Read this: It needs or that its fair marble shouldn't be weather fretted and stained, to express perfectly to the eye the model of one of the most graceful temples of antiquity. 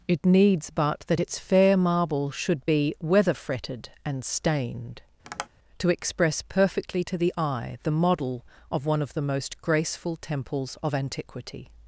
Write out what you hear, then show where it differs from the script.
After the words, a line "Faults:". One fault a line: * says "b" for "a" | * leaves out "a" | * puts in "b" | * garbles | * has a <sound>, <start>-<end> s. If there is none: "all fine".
It needs but that its fair marble should be weather fretted and stained, to express perfectly to the eye the model of one of the most graceful temples of antiquity.
Faults:
* says "but" for "or"
* says "should" for "shouldn't"
* has a tap, 5.2-5.5 s